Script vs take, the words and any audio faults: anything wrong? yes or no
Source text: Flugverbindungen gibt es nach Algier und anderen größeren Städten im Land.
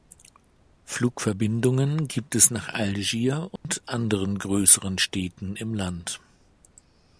yes